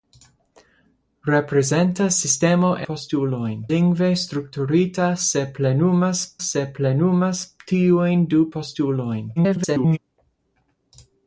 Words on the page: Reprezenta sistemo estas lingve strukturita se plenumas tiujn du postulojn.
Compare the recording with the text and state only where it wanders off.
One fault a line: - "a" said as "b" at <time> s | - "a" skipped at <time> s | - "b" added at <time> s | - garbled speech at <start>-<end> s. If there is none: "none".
- "estas" said as "postulojn" at 2.9 s
- "se plenumas" added at 6.5 s
- garbled speech at 9.4-10.0 s